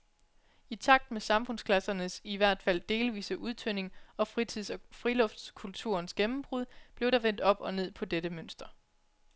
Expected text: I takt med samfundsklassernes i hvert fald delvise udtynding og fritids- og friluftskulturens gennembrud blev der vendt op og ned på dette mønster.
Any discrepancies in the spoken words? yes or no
no